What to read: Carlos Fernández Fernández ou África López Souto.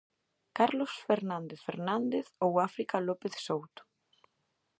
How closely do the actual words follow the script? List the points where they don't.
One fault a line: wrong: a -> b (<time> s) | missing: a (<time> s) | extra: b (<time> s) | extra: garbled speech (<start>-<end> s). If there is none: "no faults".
no faults